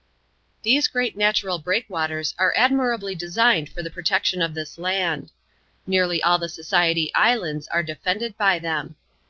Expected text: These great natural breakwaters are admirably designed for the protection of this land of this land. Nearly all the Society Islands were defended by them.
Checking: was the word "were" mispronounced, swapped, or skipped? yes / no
yes